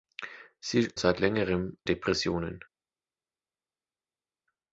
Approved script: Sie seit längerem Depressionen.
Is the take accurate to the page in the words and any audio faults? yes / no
yes